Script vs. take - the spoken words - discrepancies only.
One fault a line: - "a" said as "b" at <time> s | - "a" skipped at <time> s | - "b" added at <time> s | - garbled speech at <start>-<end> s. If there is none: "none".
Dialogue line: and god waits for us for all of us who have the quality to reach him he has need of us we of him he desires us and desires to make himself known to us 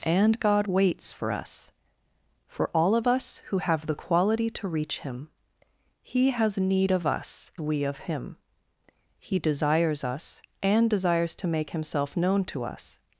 none